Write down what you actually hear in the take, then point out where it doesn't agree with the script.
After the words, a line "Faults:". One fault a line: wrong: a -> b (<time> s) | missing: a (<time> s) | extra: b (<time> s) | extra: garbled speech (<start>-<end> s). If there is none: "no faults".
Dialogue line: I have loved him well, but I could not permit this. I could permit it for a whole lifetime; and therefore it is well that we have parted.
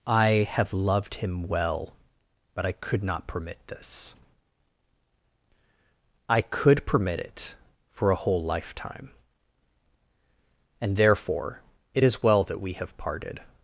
I have loved him well, but I could not permit this. I could permit it for a whole lifetime; and therefore it is well that we have parted.
Faults:
no faults